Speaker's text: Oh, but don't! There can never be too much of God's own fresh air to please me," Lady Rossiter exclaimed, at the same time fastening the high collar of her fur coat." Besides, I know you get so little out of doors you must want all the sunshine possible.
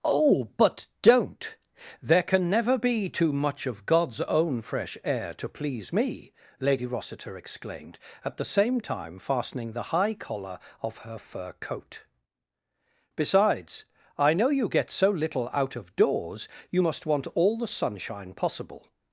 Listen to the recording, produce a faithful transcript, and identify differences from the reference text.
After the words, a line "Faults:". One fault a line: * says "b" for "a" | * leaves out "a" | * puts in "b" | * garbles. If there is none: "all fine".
Oh, but don't! There can never be too much of God's own fresh air to please me," Lady Rossiter exclaimed, at the same time fastening the high collar of her fur coat." Besides, I know you get so little out of doors you must want all the sunshine possible.
Faults:
all fine